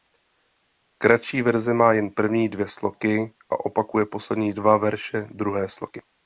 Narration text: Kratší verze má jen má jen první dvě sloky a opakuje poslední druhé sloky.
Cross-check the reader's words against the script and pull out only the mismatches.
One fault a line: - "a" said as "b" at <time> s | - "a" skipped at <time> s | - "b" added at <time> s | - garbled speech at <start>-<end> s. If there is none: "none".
- "má jen" skipped at 2.1 s
- "dva verše" added at 4.5 s